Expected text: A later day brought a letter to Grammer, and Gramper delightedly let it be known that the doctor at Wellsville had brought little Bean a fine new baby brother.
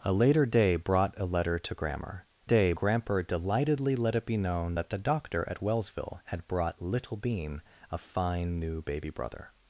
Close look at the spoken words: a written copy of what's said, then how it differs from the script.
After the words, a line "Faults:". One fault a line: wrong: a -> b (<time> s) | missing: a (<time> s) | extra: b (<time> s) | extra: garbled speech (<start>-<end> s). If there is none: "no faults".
A later day brought a letter to Grammer, day Gramper delightedly let it be known that the doctor at Wellsville had brought little Bean a fine new baby brother.
Faults:
wrong: and -> day (2.4 s)